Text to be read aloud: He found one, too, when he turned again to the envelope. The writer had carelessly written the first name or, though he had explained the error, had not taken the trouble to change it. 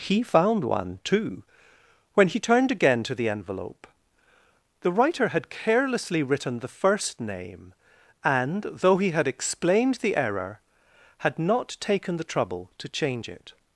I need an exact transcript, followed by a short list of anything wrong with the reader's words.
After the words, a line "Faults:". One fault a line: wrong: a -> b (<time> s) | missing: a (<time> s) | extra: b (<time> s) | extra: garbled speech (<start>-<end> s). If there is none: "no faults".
He found one, too, when he turned again to the envelope. The writer had carelessly written the first name and, though he had explained the error, had not taken the trouble to change it.
Faults:
wrong: or -> and (8.2 s)